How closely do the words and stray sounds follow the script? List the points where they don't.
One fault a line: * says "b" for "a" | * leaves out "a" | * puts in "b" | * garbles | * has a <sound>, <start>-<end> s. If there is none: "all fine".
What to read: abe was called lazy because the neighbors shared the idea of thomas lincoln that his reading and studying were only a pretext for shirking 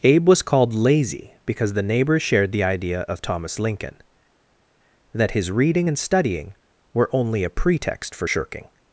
all fine